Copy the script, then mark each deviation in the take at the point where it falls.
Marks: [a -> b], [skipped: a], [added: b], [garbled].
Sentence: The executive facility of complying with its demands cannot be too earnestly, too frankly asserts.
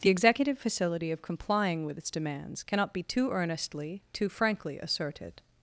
The executive facility of complying with its demands cannot be too earnestly, too frankly [asserts. -> asserted]